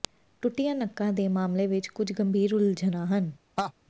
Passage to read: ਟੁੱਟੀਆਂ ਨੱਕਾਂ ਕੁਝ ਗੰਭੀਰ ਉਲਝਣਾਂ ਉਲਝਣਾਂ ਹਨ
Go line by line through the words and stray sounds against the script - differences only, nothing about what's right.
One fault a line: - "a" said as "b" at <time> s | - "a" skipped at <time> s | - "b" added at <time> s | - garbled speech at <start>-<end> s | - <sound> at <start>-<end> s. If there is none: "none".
- "ਦੇ ਮਾਮਲੇ ਵਿੱਚ" added at 1.1 s
- "ਉਲਝਣਾਂ" skipped at 3.0 s
- laugh at 3.6-3.7 s